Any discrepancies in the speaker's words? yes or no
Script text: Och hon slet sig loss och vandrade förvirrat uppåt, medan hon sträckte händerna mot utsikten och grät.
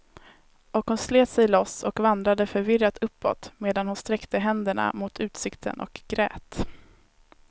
no